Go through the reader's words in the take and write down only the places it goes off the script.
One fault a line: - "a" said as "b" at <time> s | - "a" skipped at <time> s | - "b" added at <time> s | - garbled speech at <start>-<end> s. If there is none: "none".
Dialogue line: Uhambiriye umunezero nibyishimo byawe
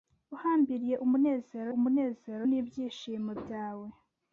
- "umunezero" added at 1.8 s